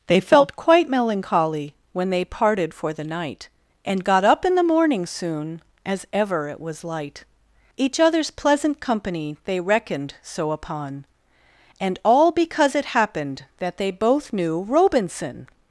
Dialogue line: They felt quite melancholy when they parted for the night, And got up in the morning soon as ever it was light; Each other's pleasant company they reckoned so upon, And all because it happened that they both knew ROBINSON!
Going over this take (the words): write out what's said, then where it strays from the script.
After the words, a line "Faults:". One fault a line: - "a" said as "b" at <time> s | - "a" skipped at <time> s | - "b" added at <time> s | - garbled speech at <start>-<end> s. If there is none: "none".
They felt quite melancholy when they parted for the night, And got up in the morning soon as ever it was light; Each other's pleasant company they reckoned so upon, And all because it happened that they both knew ROBINSON!
Faults:
none